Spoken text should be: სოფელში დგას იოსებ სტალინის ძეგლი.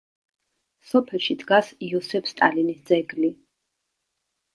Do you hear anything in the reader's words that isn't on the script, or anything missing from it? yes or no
no